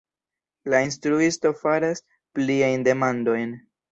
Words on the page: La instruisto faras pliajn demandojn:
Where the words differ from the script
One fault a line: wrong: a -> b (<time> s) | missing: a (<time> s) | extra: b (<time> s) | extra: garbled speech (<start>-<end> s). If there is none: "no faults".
no faults